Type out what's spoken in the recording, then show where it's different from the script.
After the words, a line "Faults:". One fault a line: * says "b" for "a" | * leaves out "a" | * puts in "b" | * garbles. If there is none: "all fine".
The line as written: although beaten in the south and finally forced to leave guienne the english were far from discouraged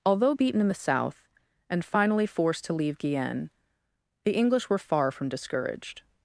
although beaten in the south and finally forced to leave guienne the english were far from discouraged
Faults:
all fine